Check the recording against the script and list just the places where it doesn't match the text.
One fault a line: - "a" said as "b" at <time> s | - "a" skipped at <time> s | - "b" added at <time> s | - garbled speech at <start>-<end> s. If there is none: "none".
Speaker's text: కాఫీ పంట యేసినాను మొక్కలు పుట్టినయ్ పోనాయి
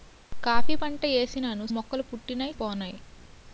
none